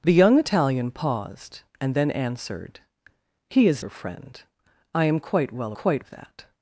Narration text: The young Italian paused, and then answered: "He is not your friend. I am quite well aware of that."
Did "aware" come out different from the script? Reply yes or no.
yes